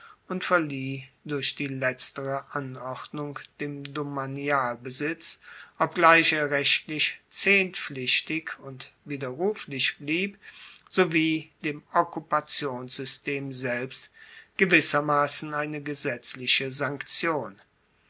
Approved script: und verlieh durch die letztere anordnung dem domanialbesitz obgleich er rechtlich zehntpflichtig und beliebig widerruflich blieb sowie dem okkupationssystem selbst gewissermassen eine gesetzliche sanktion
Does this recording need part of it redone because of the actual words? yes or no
yes